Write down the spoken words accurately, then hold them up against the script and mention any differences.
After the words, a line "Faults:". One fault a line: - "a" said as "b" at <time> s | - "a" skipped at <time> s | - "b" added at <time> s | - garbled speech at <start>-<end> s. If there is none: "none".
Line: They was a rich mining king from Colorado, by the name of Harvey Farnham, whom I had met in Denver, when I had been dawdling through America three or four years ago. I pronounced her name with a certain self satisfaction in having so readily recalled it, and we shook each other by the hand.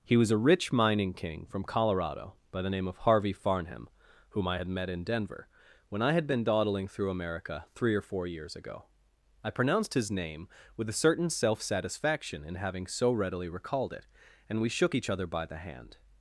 He was a rich mining king from Colorado, by the name of Harvey Farnham, whom I had met in Denver, when I had been dawdling through America three or four years ago. I pronounced his name with a certain self satisfaction in having so readily recalled it, and we shook each other by the hand.
Faults:
- "They" said as "He" at 0.0 s
- "her" said as "his" at 9.9 s